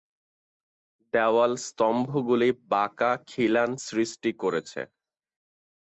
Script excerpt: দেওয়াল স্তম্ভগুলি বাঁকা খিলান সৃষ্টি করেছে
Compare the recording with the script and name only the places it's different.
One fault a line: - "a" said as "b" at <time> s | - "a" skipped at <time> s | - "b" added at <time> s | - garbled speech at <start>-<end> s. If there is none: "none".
none